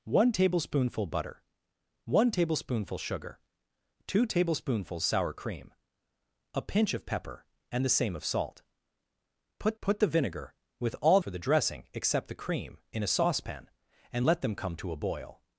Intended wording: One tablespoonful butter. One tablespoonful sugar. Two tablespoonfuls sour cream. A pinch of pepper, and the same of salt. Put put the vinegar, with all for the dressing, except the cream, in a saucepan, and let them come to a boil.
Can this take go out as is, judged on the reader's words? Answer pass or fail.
pass